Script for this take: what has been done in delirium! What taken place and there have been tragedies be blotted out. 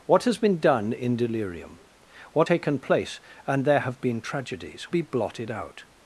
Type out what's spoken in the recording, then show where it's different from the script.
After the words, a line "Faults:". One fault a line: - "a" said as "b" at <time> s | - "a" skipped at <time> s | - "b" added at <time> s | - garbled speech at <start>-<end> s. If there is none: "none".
what has been done in delirium! What taken place and there have been tragedies be blotted out.
Faults:
none